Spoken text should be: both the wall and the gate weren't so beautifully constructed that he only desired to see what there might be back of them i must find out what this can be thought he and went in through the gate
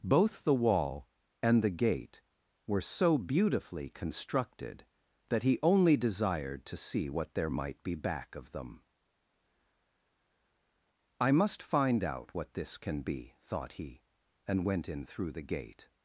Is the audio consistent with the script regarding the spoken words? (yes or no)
no